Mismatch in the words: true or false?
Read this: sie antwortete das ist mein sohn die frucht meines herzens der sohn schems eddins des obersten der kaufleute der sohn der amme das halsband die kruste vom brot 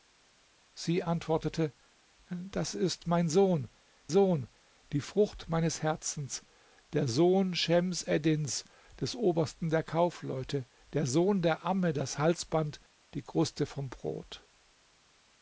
true